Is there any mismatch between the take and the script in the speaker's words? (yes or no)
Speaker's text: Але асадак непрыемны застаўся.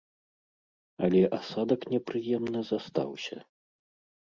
no